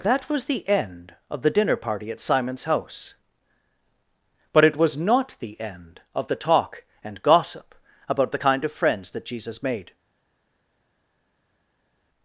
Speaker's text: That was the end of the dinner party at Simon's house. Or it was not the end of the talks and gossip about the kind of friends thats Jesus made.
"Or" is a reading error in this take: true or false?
true